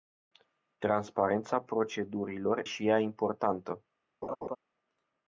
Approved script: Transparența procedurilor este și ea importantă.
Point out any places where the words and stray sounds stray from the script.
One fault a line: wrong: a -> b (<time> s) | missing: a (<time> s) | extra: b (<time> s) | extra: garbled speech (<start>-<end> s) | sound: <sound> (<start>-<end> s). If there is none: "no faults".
missing: este (2.6 s)
sound: laugh (4.2-4.6 s)